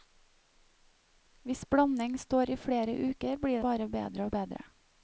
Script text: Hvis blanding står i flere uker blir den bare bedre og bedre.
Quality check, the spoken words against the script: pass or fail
fail